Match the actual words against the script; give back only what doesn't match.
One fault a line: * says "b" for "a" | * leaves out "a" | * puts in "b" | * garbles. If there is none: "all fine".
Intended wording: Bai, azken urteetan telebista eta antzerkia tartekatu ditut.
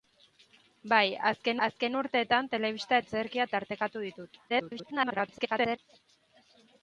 * puts in "azken"
* leaves out "eta"
* garbles